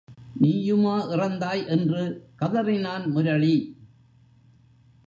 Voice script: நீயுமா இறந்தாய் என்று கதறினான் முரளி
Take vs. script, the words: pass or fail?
pass